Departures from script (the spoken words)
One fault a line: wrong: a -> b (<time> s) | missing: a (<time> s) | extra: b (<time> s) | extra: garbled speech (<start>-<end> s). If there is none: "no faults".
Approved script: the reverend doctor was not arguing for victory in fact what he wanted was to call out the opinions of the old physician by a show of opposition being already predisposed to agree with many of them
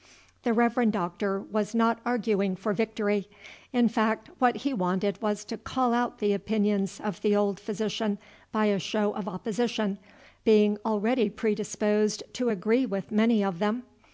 no faults